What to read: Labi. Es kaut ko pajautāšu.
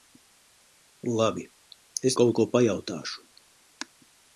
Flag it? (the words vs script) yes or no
no